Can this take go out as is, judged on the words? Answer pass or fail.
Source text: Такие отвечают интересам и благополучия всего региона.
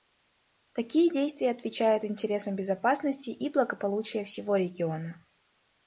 fail